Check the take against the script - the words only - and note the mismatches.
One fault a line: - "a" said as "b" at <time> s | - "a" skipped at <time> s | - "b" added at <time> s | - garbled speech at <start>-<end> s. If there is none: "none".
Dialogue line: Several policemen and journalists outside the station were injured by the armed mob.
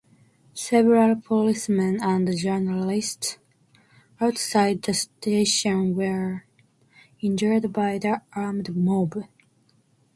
none